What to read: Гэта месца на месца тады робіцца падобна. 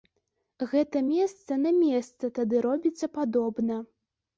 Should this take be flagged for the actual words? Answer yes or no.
no